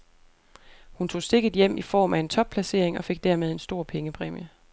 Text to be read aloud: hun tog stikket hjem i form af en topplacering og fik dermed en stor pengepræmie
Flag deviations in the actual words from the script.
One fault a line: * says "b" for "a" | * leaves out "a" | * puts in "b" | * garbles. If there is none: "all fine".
all fine